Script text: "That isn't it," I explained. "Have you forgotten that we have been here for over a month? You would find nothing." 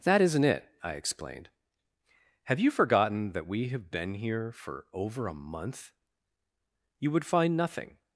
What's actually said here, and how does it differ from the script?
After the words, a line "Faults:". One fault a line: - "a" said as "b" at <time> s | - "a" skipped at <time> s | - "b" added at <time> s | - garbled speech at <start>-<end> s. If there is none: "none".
"That isn't it," I explained. "Have you forgotten that we have been here for over a month? You would find nothing."
Faults:
none